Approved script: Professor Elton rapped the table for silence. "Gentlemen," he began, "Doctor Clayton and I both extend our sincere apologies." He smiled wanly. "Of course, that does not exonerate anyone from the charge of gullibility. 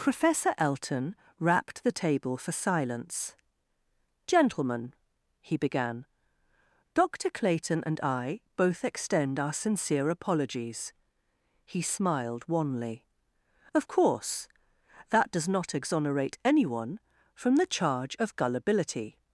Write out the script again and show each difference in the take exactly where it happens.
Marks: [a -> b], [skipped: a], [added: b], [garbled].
Professor Elton rapped the table for silence. "Gentlemen," he began, "Doctor Clayton and I both extend our sincere apologies." He smiled wanly. "Of course, that does not exonerate anyone from the charge of gullibility.